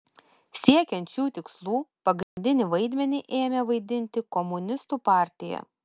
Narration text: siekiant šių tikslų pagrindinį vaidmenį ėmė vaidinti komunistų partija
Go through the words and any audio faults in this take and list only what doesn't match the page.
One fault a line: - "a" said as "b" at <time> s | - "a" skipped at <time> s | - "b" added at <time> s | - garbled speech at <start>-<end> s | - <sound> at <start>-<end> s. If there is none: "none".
- dropout at 2.2-2.4 s